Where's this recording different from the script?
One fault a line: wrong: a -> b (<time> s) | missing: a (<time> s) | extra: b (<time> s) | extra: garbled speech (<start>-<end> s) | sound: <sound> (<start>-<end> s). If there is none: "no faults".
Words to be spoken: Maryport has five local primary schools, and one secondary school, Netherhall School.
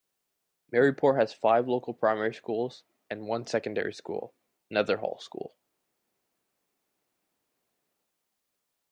no faults